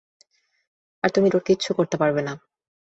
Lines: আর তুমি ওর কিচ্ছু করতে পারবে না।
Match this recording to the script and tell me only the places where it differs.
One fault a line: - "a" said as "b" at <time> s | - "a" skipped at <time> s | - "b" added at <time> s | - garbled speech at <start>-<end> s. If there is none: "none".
none